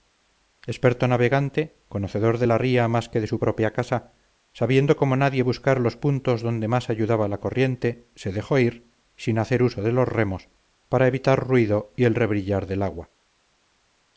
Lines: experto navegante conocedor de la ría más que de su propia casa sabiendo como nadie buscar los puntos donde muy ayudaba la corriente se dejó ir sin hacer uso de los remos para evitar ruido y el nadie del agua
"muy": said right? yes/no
no